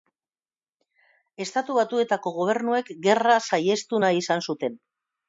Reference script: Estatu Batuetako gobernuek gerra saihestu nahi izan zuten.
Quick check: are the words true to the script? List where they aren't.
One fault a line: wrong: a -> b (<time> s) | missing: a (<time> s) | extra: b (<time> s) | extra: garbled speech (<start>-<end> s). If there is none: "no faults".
no faults